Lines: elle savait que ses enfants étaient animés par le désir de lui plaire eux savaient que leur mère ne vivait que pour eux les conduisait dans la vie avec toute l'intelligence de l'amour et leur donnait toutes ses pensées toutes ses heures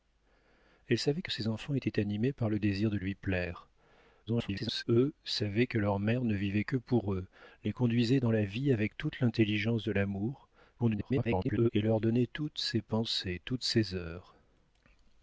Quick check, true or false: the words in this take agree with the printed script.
false